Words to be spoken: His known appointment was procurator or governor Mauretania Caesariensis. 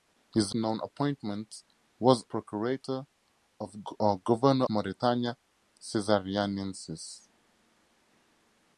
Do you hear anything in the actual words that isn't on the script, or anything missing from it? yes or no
no